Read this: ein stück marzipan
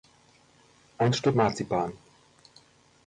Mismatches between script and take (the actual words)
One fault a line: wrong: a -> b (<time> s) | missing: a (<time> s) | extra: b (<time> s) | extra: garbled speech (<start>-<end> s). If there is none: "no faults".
no faults